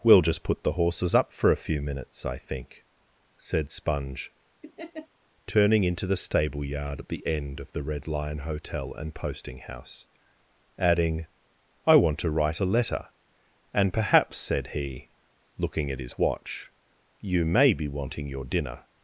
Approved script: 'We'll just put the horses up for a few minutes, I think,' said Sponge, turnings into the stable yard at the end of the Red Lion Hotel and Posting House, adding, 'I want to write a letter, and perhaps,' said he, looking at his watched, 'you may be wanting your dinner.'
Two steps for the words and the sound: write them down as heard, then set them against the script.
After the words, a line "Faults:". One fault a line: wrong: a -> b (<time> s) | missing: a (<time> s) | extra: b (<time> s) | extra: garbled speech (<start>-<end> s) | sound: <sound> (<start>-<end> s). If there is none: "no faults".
'We'll just put the horses up for a few minutes, I think,' said Sponge, turning into the stable yard at the end of the Red Lion Hotel and Posting House, adding, 'I want to write a letter, and perhaps,' said he, looking at his watch, 'you may be wanting your dinner.'
Faults:
sound: laugh (4.6-5.1 s)
wrong: turnings -> turning (5.5 s)
wrong: watched -> watch (16.2 s)